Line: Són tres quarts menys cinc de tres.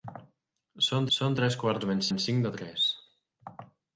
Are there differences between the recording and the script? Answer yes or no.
yes